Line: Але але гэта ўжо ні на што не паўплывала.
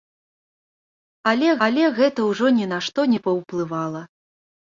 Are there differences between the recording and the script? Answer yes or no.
no